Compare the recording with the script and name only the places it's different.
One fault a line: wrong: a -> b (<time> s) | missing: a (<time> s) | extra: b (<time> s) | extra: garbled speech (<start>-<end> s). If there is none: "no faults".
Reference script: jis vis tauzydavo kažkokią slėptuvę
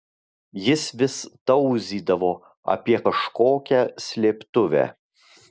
extra: apie (2.8 s)